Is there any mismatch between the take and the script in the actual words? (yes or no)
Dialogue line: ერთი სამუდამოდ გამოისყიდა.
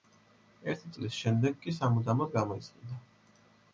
yes